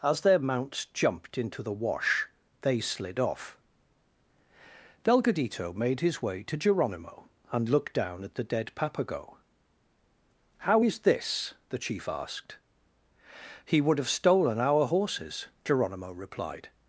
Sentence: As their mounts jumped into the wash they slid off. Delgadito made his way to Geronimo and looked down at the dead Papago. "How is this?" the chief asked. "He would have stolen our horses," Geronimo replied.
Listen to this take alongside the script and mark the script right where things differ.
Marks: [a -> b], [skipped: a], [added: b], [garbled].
As their mounts jumped into the wash they slid off. Delgadito made his way to Geronimo and looked down at the dead Papago. "How is this?" the chief asked. "He would have stolen our horses," Geronimo replied.